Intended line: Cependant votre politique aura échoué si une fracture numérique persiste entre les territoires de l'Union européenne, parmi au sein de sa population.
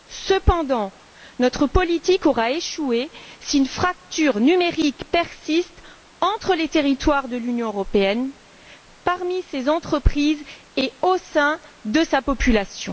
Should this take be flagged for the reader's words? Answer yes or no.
yes